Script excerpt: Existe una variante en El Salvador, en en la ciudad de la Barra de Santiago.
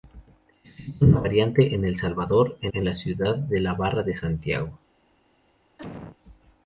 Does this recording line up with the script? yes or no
yes